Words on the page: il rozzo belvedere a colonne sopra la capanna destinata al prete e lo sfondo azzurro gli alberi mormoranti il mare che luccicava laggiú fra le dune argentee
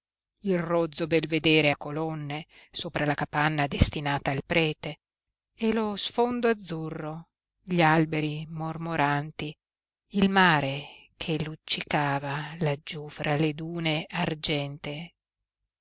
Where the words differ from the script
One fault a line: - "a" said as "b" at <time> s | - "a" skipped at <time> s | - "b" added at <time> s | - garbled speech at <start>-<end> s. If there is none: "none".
none